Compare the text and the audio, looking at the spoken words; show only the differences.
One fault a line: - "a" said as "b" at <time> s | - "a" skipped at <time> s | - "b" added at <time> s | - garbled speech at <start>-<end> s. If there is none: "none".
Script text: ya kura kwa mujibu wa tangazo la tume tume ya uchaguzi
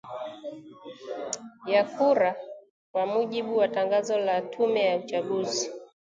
- "tume" skipped at 4.8 s